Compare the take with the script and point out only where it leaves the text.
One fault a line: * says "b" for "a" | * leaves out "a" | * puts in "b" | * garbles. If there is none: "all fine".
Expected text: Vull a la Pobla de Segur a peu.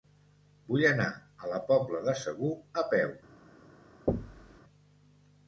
* puts in "anar"